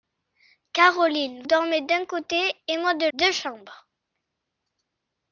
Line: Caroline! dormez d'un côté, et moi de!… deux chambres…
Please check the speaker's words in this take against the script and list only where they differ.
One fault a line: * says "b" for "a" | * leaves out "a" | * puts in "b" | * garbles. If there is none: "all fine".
all fine